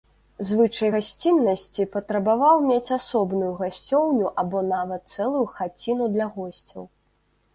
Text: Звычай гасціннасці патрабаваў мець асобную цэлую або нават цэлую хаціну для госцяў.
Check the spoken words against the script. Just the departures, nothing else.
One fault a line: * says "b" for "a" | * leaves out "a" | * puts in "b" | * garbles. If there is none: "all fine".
* says "гасцёўню" for "цэлую"